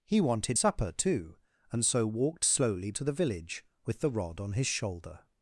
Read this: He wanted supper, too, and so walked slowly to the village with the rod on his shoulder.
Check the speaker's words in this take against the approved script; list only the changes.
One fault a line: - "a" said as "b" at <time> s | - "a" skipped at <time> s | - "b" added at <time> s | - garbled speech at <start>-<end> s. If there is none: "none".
none